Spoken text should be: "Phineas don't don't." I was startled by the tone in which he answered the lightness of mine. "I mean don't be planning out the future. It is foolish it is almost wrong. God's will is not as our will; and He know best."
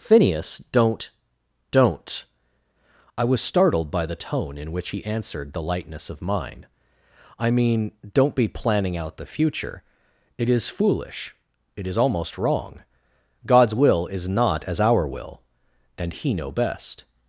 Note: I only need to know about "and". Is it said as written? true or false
true